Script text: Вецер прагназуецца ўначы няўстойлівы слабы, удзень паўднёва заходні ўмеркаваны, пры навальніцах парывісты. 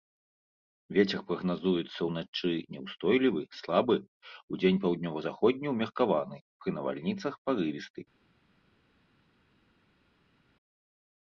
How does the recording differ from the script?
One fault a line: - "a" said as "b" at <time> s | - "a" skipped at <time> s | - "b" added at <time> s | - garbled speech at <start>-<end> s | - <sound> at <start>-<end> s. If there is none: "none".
none